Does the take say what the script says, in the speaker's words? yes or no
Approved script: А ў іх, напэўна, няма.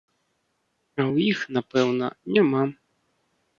yes